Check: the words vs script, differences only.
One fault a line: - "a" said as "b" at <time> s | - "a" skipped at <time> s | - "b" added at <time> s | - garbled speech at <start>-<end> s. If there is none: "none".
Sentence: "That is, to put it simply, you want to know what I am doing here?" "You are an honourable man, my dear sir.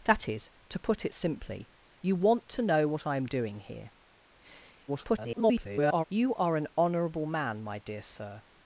- garbled speech at 4.9-6.0 s